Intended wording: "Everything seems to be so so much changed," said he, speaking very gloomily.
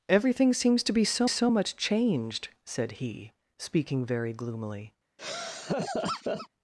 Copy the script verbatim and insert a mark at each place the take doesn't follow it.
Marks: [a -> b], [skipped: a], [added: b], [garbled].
"Everything seems to be so so much changed," said he, speaking very gloomily.